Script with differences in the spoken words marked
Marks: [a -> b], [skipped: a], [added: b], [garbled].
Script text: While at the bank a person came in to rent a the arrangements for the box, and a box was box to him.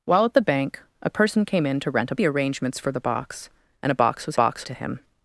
While at the bank a person came in to rent a the arrangements for the box, and a box was box to him.